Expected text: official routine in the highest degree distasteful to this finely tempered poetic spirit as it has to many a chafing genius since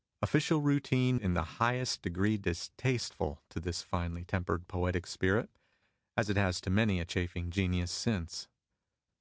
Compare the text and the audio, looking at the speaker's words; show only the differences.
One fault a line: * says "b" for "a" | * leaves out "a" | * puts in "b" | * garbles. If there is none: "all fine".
all fine